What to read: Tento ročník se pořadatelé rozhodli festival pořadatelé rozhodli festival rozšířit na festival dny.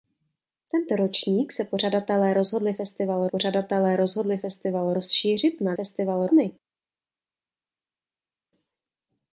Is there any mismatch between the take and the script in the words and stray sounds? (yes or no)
no